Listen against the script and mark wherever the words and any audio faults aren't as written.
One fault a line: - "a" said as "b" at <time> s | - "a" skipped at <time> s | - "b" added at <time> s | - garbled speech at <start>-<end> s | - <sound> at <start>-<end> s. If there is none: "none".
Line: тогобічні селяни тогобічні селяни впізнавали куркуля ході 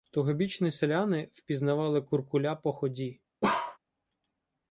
- "тогобічні селяни" skipped at 1.3 s
- "по" added at 2.5 s
- bark at 3.4-3.8 s